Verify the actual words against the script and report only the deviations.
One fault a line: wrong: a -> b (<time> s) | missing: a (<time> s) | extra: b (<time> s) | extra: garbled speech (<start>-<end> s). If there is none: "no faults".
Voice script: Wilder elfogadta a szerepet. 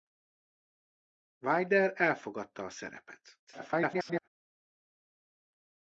extra: garbled speech (3.5-4.3 s)